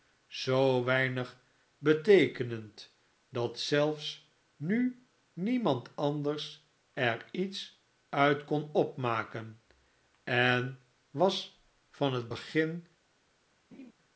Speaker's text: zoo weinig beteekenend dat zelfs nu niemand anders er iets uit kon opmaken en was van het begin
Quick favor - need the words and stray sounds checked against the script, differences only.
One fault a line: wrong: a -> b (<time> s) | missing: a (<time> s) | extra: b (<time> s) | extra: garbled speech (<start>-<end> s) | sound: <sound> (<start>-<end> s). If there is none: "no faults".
sound: laugh (13.7-13.9 s)